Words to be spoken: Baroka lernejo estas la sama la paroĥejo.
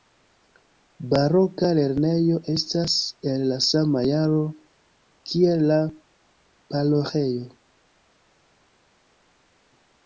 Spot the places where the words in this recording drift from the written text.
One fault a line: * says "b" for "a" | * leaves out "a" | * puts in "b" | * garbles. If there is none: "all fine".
* puts in "el"
* puts in "jaro kiel"